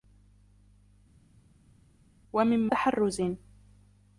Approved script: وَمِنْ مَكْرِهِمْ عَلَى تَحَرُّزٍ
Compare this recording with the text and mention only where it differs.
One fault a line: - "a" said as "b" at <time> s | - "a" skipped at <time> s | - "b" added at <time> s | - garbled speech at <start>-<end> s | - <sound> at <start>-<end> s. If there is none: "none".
- "مَكْرِهِمْ عَلَى" skipped at 2.7 s